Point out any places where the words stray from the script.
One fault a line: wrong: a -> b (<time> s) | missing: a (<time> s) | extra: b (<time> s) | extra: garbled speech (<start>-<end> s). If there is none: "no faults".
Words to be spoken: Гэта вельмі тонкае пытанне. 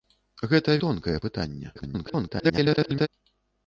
missing: вельмі (0.8 s)
extra: garbled speech (1.7-3.1 s)